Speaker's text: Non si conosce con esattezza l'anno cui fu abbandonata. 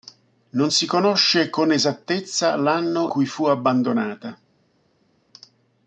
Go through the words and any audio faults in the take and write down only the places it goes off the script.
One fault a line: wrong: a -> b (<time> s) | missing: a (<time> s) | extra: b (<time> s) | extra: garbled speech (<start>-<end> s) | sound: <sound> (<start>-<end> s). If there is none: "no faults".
no faults